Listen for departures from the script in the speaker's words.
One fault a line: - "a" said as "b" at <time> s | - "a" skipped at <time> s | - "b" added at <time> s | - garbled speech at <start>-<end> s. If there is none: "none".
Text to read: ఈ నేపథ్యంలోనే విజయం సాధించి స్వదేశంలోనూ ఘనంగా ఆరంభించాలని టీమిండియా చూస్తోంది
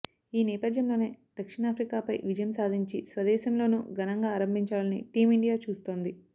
- "దక్షిణాఫ్రికాపై" added at 1.4 s